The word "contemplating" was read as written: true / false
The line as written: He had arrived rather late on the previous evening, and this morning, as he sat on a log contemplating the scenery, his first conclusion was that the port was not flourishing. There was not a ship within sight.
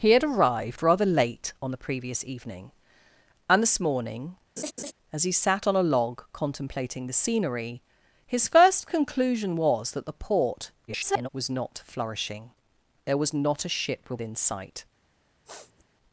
true